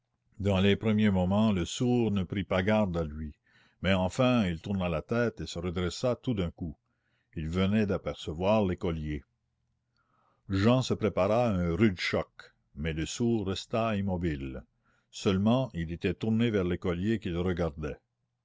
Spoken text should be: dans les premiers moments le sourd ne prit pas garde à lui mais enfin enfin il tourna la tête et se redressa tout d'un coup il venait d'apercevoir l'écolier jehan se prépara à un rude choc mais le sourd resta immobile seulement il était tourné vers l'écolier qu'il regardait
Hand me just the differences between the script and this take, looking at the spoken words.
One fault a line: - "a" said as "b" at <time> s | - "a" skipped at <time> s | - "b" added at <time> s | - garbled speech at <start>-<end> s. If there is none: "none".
- "enfin" skipped at 4.4 s